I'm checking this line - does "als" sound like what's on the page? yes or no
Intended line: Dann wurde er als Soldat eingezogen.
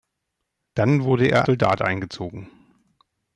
no